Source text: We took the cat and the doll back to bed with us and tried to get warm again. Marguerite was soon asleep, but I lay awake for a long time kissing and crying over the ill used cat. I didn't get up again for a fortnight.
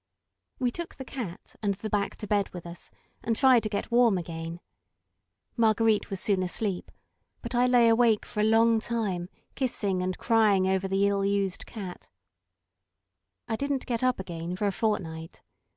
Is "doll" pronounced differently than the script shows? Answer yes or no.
yes